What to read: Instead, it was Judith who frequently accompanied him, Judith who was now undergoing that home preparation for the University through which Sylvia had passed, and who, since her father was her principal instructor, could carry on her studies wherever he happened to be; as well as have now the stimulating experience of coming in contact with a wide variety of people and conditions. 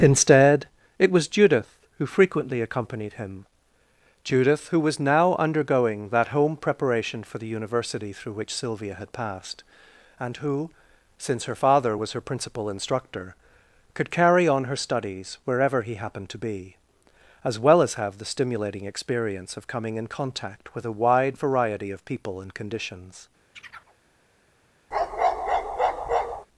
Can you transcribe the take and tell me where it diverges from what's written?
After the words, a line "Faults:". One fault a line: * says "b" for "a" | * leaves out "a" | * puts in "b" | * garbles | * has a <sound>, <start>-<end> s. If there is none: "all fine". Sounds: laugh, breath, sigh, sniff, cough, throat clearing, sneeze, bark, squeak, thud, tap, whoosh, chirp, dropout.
Instead, it was Judith who frequently accompanied him, Judith who was now undergoing that home preparation for the University through which Sylvia had passed, and who, since her father was her principal instructor, could carry on her studies wherever he happened to be; as well as have the stimulating experience of coming in contact with a wide variety of people and conditions.
Faults:
* leaves out "now"
* has a chirp, 23.5-24.0 s
* has a bark, 24.9-26.5 s